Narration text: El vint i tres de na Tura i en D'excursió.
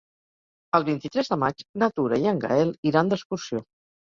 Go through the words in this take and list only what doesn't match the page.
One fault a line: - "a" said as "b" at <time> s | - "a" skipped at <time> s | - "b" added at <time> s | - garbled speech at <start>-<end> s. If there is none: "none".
- "maig" added at 1.4 s
- "Gaël iran" added at 2.5 s